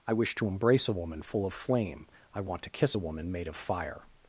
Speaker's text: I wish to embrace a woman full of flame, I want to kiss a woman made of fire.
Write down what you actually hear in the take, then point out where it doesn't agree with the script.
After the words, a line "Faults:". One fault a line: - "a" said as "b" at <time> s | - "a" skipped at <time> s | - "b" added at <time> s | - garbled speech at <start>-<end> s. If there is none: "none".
I wish to embrace a woman full of flame, I want to kiss a woman made of fire.
Faults:
none